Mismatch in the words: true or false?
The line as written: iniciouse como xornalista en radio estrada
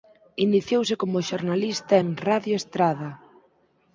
false